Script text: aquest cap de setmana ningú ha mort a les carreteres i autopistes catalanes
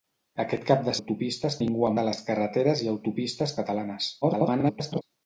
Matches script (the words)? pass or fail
fail